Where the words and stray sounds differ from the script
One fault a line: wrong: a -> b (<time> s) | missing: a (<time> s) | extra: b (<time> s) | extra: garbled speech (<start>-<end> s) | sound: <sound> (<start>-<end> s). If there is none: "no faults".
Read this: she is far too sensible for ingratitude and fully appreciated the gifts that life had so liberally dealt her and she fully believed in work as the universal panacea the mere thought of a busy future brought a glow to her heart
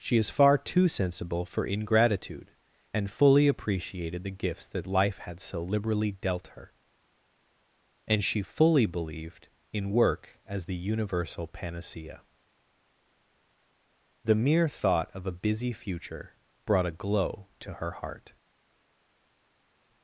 no faults